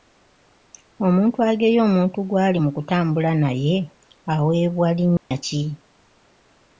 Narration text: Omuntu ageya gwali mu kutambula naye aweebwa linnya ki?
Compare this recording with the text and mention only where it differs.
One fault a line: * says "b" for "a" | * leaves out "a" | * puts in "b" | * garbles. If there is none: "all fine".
* puts in "omuntu"